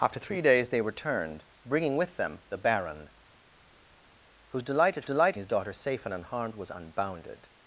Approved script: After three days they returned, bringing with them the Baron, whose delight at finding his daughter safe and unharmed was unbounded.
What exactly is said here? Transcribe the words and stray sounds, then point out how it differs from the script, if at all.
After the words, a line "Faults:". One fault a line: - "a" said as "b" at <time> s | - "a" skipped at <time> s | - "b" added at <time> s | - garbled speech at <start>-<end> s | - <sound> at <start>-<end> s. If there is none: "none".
After three days they returned, bringing with them the Baron, whose delight at delight his daughter safe and unharmed was unbounded.
Faults:
- "finding" said as "delight" at 5.1 s